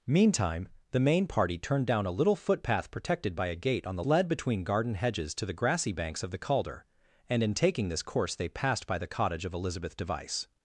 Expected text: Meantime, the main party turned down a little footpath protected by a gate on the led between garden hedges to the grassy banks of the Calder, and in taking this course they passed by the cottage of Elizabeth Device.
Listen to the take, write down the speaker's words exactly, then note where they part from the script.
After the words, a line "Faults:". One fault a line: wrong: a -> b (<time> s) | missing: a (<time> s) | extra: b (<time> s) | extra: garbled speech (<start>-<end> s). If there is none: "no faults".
Meantime, the main party turned down a little footpath protected by a gate on the led between garden hedges to the grassy banks of the Calder, and in taking this course they passed by the cottage of Elizabeth Device.
Faults:
no faults